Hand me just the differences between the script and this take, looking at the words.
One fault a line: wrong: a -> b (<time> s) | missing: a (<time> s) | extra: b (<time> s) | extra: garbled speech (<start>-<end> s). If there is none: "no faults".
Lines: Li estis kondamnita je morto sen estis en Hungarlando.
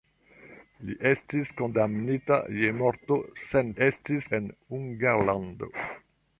no faults